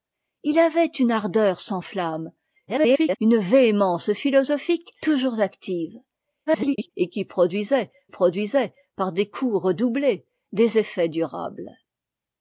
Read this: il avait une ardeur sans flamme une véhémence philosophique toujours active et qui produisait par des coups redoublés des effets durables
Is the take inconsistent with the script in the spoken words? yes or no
yes